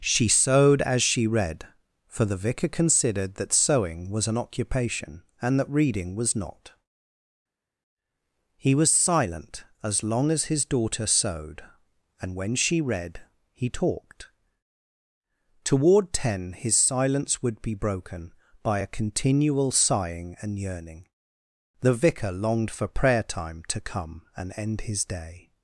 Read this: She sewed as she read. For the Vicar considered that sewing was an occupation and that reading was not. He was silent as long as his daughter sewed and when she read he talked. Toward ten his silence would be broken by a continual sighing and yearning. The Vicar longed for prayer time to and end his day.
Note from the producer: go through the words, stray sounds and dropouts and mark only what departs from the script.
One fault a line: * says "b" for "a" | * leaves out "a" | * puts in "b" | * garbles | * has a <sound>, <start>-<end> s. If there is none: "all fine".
* puts in "come"